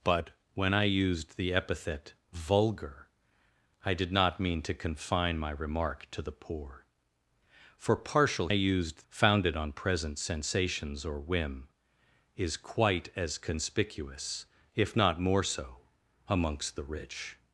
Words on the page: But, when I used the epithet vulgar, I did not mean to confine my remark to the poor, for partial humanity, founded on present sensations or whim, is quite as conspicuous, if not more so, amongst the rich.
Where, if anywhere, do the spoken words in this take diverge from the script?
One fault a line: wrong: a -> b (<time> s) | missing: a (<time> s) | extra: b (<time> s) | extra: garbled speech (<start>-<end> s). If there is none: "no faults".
wrong: humanity -> used (8.5 s)